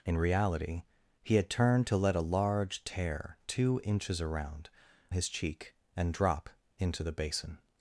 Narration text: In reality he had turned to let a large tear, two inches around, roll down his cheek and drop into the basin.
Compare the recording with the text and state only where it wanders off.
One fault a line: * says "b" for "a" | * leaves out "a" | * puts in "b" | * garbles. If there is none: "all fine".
* leaves out "roll down"